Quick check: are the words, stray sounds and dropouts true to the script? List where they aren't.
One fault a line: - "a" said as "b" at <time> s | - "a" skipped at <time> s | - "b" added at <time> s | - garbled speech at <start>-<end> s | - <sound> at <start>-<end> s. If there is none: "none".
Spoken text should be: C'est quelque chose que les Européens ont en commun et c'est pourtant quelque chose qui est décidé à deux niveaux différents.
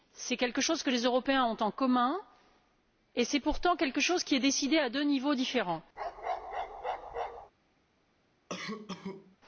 - bark at 6.0-7.5 s
- cough at 8.5-9.4 s